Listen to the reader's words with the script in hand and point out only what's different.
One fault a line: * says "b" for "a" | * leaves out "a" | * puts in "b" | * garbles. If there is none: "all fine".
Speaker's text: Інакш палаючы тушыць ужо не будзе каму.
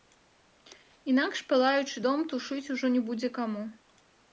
* puts in "дом"